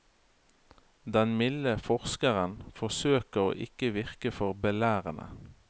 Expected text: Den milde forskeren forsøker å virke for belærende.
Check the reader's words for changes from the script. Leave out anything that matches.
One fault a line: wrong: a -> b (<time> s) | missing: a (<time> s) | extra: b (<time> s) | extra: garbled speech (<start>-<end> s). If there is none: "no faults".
extra: ikke (3.7 s)